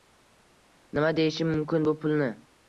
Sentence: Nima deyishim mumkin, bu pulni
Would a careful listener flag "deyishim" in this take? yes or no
no